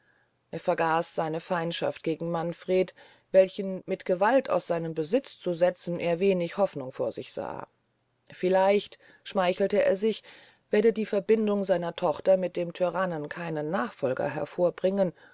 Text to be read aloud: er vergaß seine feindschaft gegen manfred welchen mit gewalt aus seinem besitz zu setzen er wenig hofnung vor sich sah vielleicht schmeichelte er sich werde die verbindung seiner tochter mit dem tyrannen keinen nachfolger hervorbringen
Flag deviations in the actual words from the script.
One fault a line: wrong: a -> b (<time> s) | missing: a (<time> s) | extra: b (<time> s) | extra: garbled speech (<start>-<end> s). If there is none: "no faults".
no faults